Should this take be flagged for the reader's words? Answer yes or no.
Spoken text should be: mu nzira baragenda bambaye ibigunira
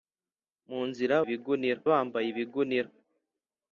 yes